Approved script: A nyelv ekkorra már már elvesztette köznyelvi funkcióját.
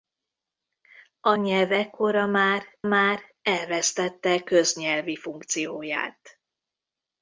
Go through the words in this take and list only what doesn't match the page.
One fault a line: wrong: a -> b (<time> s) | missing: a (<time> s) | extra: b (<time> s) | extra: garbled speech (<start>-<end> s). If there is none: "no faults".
no faults